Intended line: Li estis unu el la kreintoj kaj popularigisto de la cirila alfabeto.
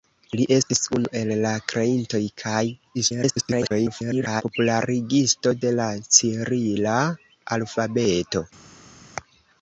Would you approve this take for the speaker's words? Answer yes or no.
no